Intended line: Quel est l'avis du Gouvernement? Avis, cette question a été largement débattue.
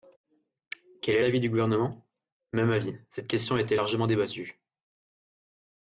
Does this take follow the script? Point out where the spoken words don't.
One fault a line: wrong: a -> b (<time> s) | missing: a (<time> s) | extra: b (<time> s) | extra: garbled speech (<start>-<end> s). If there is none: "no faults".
extra: Même (2.5 s)